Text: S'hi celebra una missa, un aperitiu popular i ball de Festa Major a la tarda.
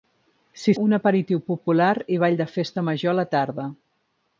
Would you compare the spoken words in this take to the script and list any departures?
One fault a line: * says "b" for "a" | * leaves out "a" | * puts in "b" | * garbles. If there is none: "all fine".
* leaves out "celebra una missa"